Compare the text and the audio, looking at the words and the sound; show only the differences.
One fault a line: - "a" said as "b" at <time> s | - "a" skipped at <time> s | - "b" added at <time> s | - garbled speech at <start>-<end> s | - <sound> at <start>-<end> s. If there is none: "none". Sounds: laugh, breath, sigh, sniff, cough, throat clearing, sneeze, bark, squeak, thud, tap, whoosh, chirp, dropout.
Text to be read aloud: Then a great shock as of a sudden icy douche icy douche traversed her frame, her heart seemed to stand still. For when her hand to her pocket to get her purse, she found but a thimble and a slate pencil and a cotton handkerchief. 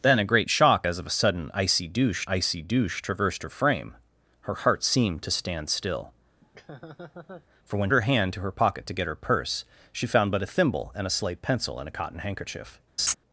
- laugh at 6.4-7.5 s
- laugh at 13.0-13.1 s